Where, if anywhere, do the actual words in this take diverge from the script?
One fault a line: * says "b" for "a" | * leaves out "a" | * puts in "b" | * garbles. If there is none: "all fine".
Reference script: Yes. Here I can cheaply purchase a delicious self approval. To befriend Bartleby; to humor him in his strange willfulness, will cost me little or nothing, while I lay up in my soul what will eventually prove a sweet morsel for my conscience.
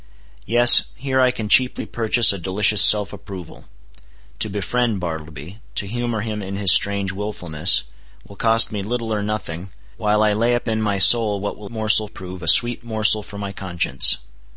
* says "morsel" for "eventually"